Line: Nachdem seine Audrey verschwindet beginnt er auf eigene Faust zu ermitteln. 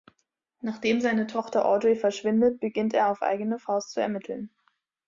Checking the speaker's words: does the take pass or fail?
fail